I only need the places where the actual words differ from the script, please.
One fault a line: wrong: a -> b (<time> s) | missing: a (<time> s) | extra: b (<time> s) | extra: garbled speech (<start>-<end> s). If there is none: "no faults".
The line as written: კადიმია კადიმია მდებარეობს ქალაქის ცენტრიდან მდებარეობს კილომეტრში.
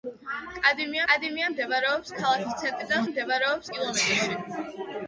no faults